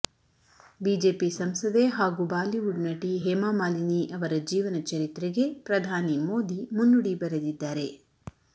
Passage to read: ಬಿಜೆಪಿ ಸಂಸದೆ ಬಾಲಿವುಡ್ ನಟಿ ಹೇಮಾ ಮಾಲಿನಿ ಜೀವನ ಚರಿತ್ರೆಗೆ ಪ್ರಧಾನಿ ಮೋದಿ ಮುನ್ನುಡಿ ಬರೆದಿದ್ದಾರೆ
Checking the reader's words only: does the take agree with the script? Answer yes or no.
no